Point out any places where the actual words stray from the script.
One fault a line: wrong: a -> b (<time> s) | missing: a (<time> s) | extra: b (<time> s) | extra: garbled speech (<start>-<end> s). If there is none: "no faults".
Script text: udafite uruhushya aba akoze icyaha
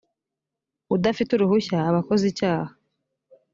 no faults